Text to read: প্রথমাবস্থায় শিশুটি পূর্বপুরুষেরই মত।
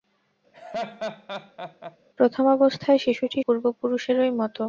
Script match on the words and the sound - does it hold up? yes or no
no